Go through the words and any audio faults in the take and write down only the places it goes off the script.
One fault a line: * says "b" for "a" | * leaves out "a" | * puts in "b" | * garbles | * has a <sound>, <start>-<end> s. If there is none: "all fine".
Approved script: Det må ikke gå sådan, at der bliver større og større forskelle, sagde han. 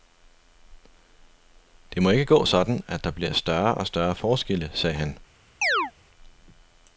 * has a chirp, 5.6-5.9 s